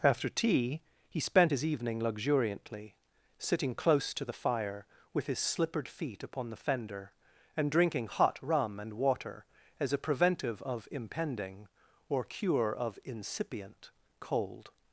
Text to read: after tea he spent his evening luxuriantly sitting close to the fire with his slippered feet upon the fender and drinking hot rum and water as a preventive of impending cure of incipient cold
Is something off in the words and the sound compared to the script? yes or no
yes